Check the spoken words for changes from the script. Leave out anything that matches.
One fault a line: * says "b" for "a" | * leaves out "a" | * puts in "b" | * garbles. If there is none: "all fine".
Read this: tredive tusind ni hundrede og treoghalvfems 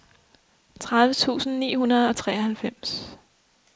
all fine